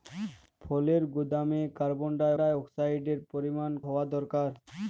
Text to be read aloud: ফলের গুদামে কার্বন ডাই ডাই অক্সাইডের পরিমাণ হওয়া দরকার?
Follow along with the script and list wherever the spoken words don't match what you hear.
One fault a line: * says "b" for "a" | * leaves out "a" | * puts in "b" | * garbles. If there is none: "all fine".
all fine